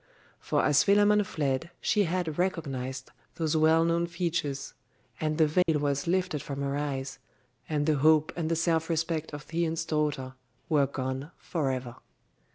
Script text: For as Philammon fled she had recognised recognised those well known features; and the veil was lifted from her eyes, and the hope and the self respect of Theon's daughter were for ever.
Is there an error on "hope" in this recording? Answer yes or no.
no